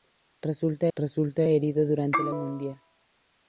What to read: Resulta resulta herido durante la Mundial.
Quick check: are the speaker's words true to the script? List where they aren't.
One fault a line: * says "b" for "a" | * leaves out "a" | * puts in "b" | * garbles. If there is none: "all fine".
all fine